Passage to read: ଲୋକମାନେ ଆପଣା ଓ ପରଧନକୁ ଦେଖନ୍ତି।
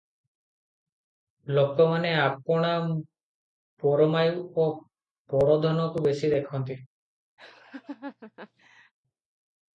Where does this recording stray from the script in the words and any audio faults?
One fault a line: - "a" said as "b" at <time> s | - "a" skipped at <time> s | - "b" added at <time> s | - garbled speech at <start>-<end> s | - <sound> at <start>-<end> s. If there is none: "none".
- "ପରମାୟୁ" added at 3.8 s
- "ବେଶି" added at 6.0 s
- laugh at 7.4-8.9 s